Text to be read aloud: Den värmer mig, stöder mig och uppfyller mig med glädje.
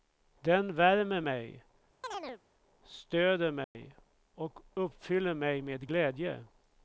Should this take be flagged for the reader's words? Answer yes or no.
no